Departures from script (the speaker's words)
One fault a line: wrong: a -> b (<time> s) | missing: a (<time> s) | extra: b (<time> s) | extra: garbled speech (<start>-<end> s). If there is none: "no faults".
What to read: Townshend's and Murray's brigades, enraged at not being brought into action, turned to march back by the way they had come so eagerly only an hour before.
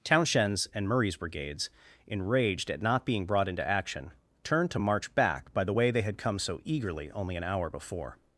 no faults